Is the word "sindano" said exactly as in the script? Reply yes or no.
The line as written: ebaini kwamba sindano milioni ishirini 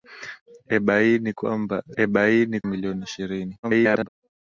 no